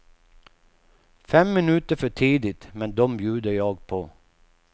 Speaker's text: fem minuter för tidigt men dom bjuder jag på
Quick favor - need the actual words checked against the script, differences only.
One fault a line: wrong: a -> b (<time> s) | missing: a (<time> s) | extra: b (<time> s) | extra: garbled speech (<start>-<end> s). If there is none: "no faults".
no faults